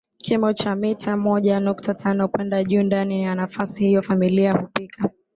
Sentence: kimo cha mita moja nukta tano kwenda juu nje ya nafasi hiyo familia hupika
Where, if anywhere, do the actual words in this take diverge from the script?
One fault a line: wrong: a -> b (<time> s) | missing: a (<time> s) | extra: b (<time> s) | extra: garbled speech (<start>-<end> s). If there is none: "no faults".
wrong: nje -> ndani (2.8 s)